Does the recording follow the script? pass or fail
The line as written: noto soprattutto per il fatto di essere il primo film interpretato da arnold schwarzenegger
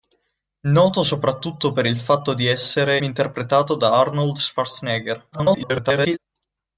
fail